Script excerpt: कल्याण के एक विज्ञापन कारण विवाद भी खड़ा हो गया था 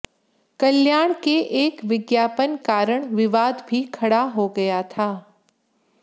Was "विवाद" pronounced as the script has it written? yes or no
yes